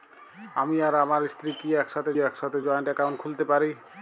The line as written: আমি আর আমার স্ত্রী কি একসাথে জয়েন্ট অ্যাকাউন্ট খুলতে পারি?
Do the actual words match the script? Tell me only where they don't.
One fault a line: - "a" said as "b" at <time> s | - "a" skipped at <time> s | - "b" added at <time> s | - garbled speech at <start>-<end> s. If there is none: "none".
- "একসাথে" added at 2.2 s